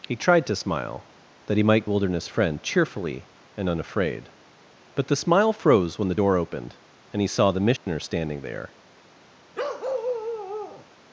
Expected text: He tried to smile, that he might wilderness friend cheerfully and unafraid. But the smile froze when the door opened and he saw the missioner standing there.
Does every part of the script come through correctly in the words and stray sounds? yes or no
no